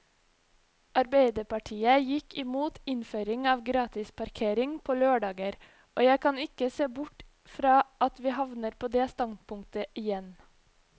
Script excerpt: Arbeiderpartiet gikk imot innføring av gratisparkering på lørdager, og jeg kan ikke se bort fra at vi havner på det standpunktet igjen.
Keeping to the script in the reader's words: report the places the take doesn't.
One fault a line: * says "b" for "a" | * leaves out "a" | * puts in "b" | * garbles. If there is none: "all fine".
all fine